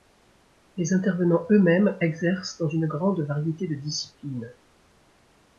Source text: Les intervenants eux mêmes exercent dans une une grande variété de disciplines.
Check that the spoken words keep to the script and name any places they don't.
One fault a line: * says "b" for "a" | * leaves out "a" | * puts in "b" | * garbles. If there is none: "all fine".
* leaves out "une"